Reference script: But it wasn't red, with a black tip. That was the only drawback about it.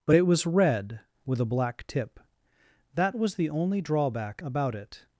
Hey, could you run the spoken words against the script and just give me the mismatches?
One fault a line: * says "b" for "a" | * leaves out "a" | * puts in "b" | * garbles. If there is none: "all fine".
* says "was" for "wasn't"